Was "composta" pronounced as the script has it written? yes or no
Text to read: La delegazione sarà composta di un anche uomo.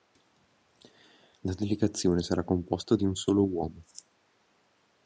yes